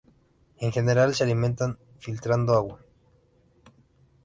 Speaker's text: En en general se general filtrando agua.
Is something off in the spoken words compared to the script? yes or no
yes